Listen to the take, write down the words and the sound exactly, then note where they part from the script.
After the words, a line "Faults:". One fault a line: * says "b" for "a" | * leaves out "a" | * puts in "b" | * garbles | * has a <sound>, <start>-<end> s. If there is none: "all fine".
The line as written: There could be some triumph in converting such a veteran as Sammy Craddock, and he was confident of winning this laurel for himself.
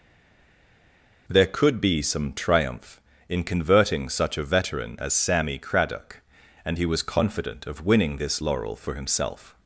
There could be some triumph in converting such a veteran as Sammy Craddock, and he was confident of winning this laurel for himself.
Faults:
all fine